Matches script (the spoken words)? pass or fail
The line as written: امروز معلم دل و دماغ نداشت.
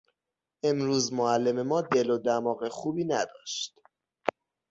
fail